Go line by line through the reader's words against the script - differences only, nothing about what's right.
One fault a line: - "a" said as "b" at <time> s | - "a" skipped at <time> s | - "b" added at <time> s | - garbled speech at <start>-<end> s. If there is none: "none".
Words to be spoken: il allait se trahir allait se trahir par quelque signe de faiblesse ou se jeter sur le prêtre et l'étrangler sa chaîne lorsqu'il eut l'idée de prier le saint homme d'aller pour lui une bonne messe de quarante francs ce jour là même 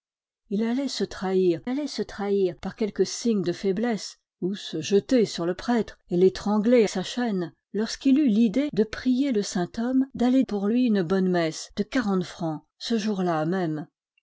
none